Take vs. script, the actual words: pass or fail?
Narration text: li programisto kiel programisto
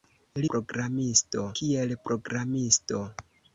pass